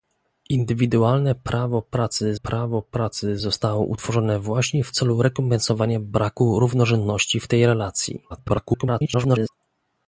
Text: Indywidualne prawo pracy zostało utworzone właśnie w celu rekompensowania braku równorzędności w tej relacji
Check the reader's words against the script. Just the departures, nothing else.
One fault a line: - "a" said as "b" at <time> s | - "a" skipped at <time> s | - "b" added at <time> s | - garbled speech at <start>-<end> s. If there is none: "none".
- "prawo pracy" added at 2.3 s
- garbled speech at 8.3-9.5 s